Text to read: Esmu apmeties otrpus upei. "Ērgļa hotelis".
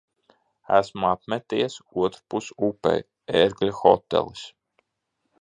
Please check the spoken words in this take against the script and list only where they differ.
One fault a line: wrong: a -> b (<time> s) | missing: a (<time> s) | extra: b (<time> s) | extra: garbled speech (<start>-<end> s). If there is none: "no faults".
no faults